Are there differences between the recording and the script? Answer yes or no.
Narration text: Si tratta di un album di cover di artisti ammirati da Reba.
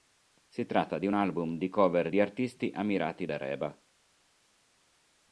no